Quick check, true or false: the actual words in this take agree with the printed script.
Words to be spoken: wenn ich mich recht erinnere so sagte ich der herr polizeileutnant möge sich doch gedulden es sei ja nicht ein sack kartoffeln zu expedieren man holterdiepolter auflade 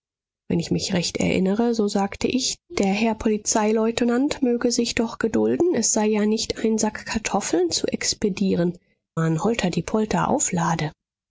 true